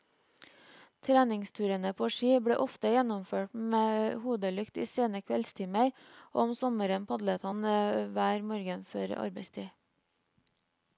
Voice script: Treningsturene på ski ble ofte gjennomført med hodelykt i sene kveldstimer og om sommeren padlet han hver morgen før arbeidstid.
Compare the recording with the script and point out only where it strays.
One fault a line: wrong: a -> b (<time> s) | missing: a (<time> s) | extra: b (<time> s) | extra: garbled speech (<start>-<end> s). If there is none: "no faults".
no faults